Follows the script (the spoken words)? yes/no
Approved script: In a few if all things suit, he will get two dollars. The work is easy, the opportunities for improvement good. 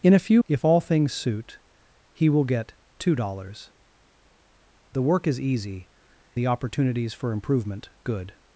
yes